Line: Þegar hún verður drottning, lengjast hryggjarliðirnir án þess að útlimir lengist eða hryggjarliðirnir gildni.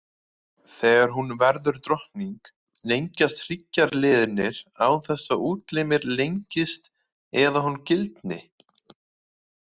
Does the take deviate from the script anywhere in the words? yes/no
yes